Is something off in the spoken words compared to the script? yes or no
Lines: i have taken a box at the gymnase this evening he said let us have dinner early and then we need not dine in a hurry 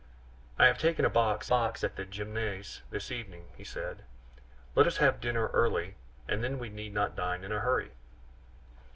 yes